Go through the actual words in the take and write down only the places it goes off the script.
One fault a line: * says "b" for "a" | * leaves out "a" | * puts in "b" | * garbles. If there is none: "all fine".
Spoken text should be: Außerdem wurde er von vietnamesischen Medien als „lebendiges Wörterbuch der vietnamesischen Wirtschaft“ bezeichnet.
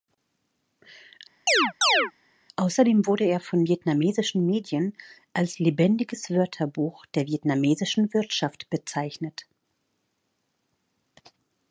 all fine